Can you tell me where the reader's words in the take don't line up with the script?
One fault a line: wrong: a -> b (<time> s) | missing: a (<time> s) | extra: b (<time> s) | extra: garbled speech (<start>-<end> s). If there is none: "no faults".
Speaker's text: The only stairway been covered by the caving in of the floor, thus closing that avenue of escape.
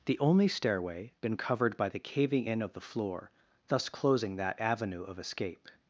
no faults